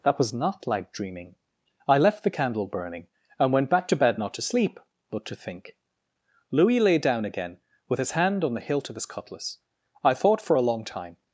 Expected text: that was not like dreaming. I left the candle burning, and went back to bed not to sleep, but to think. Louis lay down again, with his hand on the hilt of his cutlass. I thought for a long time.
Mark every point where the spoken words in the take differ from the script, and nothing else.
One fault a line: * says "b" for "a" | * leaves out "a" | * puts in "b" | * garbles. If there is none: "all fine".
all fine